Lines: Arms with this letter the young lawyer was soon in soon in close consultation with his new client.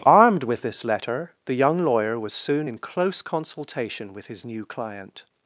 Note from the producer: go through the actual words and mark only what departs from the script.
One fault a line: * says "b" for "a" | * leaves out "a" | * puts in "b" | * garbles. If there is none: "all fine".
* says "Armed" for "Arms"
* leaves out "soon in"